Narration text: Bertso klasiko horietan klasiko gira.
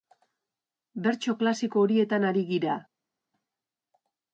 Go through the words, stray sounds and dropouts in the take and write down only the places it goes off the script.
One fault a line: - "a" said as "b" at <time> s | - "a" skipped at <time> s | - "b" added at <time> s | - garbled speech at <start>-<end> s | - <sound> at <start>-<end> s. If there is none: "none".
- "klasiko" said as "ari" at 2.3 s